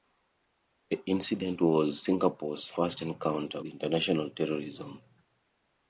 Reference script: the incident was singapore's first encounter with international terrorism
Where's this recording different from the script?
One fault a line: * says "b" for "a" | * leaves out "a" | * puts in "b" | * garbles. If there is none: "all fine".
* leaves out "with"